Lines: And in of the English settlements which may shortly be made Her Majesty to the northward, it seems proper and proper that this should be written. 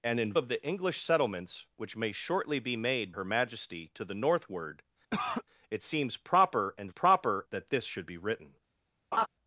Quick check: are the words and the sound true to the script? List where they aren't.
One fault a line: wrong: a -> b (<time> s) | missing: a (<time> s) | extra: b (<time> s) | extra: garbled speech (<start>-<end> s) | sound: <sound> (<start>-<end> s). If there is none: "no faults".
sound: cough (5.1-5.4 s)
sound: laugh (9.1-9.3 s)